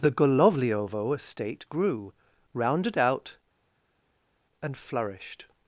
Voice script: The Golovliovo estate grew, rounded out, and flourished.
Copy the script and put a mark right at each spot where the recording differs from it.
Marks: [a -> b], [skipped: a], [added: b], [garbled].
The Golovliovo estate grew, rounded out, and flourished.